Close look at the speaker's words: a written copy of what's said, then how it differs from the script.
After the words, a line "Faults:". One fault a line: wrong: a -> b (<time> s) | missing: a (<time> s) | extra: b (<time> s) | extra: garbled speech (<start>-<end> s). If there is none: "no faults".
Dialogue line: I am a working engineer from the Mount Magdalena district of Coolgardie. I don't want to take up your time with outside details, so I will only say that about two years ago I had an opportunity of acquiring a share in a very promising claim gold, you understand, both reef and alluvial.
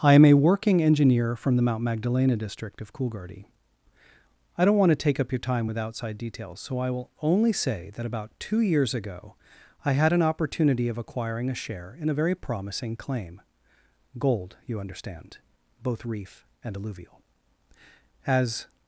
I am a working engineer from the Mount Magdalena district of Coolgardie. I don't want to take up your time with outside details, so I will only say that about two years ago I had an opportunity of acquiring a share in a very promising claim gold, you understand, both reef and alluvial. As
Faults:
extra: As (18.2 s)